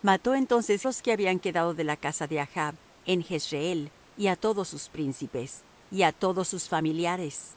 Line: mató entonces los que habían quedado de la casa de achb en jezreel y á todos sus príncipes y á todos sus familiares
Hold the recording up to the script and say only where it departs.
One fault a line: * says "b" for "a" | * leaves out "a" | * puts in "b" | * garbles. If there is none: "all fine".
all fine